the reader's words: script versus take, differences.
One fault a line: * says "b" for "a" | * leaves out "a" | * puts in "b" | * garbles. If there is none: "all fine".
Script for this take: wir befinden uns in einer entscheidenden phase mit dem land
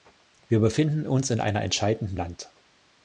* leaves out "phase mit dem"